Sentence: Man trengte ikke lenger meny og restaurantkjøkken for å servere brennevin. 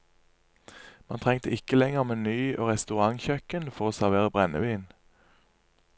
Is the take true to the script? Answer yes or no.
yes